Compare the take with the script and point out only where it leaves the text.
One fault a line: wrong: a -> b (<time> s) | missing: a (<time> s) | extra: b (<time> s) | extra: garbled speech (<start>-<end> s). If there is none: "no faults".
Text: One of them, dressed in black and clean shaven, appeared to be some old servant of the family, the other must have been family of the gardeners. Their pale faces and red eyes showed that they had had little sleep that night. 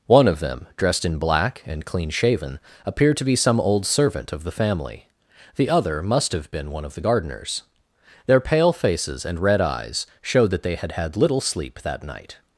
wrong: family -> one (6.7 s)